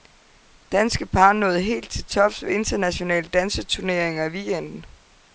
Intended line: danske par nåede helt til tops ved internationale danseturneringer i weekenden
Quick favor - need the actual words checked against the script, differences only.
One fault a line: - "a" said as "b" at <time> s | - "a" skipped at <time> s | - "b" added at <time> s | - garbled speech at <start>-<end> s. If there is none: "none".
none